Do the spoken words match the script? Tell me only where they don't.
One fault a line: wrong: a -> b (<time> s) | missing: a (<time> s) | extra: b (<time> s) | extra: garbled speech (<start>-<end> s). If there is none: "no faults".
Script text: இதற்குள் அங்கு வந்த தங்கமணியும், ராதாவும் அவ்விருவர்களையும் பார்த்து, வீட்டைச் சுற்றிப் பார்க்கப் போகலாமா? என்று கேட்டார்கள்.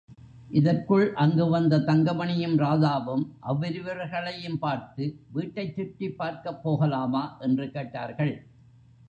no faults